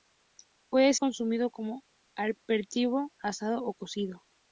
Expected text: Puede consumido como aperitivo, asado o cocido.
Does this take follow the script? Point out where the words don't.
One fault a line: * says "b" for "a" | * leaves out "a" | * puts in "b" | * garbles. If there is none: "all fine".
all fine